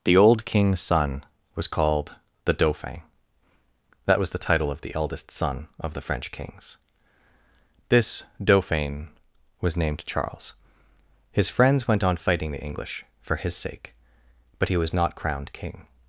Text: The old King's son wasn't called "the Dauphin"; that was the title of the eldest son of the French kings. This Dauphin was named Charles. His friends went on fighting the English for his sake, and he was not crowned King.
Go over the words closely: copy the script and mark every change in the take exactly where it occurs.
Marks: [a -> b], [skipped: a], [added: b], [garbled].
The old King's son [wasn't -> was] called "the Dauphin"; that was the title of the eldest son of the French kings. This Dauphin was named Charles. His friends went on fighting the English for his sake, [and -> but] he was not crowned King.